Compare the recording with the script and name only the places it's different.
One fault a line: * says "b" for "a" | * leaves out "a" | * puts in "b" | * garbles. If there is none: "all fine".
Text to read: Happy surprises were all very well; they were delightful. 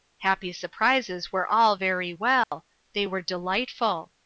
all fine